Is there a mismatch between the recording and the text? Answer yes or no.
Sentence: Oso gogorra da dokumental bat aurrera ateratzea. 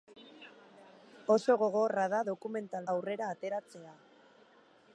yes